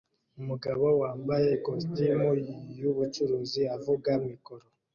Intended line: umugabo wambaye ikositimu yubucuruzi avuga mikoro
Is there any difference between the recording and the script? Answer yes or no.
no